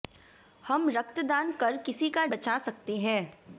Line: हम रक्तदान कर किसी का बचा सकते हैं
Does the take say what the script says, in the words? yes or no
yes